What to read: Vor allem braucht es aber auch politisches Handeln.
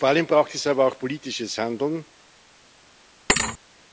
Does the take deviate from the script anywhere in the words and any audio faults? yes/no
yes